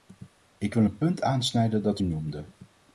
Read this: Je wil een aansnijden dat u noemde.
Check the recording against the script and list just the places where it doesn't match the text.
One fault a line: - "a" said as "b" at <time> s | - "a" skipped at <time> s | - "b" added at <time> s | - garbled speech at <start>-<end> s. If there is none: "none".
- "Je" said as "Ik" at 0.6 s
- "punt" added at 1.0 s